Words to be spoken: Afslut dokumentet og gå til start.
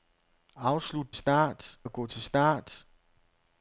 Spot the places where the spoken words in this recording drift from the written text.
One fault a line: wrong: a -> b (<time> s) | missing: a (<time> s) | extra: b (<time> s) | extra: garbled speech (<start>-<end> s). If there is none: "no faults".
wrong: dokumentet -> start (1.1 s)